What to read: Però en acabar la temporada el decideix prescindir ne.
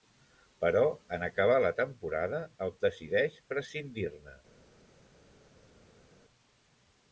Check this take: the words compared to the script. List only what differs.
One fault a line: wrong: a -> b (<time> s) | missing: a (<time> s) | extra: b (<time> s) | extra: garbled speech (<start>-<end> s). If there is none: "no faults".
no faults